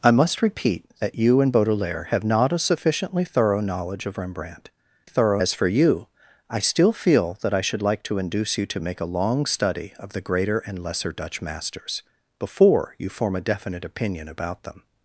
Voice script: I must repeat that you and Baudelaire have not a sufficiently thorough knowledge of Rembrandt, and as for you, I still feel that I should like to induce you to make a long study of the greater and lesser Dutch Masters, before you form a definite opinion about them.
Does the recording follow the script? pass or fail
fail